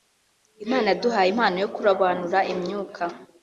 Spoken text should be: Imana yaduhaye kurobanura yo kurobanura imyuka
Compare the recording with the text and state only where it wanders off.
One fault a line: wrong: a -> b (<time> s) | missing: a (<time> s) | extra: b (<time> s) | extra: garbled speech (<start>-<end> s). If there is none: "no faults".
wrong: kurobanura -> impano (1.3 s)